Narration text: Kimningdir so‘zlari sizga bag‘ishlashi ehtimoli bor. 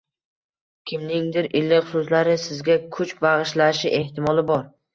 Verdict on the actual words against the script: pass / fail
fail